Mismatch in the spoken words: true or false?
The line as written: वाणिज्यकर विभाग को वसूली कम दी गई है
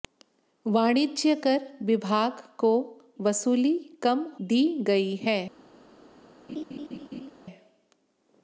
false